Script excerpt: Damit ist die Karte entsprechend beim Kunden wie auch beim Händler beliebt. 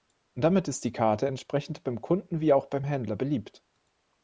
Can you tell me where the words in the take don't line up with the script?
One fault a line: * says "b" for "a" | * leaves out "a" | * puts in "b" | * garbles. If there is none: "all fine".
all fine